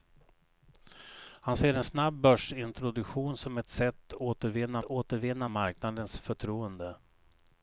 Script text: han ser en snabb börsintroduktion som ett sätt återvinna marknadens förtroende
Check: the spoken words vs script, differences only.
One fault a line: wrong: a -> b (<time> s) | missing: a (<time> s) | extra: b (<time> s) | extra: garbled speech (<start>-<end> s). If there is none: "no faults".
extra: återvinna (4.8 s)